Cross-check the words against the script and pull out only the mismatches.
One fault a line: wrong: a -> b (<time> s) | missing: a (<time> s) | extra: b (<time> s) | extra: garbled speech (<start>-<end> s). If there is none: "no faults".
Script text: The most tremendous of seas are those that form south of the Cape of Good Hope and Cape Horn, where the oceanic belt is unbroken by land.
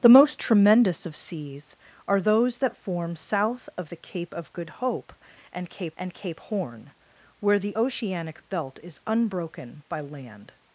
extra: and Cape (6.0 s)